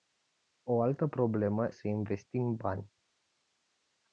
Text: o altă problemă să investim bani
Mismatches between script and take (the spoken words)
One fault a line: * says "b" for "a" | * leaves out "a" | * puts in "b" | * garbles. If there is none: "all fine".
all fine